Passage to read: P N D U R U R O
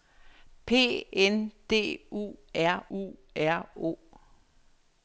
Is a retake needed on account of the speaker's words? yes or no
no